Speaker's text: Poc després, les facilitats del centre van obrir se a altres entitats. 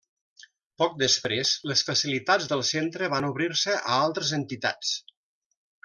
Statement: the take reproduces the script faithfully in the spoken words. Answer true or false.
true